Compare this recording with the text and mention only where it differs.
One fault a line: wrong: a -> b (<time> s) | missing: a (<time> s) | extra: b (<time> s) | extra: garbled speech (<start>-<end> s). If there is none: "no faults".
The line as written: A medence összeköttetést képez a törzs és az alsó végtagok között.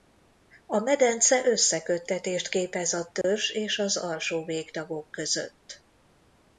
no faults